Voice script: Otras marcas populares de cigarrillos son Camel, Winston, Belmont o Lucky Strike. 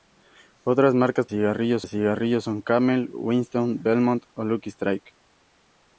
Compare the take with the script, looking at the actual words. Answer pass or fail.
fail